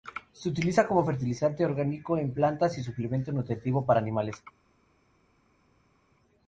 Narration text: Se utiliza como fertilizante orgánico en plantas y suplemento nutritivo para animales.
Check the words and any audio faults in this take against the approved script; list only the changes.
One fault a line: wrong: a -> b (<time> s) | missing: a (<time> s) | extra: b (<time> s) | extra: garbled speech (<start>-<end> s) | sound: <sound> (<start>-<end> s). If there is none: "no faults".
no faults